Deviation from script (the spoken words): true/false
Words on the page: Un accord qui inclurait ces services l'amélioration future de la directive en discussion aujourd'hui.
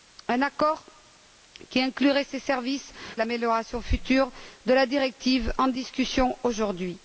false